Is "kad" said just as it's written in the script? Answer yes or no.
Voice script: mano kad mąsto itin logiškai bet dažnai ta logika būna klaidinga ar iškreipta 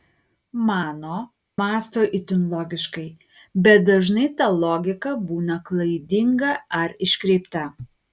no